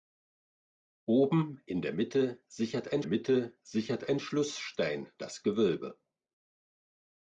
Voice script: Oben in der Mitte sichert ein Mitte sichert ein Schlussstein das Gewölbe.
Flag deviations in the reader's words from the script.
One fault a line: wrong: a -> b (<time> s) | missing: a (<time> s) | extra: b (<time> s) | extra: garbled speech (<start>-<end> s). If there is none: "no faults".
no faults